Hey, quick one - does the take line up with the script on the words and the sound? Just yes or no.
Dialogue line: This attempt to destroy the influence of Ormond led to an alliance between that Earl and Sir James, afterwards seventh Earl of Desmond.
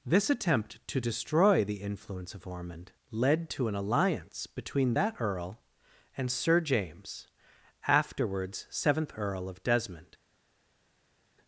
yes